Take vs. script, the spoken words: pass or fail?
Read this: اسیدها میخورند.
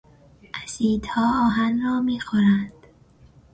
fail